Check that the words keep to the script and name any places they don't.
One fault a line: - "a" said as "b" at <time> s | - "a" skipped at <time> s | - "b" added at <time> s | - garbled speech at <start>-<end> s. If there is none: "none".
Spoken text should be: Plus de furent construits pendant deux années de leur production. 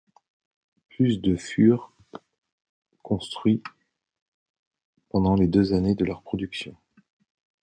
- "les" added at 5.3 s